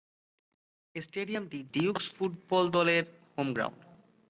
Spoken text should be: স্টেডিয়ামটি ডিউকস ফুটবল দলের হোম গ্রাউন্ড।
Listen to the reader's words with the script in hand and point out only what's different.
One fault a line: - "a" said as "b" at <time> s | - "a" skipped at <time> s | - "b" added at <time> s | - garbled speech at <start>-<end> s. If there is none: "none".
none